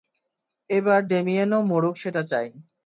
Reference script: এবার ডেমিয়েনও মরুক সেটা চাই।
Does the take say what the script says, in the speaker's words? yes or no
yes